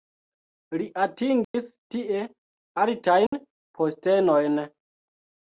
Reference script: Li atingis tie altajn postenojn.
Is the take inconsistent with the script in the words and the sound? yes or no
yes